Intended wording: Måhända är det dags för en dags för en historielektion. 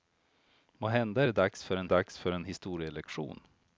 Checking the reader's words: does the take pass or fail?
pass